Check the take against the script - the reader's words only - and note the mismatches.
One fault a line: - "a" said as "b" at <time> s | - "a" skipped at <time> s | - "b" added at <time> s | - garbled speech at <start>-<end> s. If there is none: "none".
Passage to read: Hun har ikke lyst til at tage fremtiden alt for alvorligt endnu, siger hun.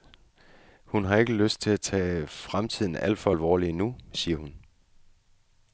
none